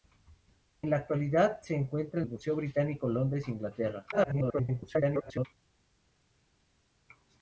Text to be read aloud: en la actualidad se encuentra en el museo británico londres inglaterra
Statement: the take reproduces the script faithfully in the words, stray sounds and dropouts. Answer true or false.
false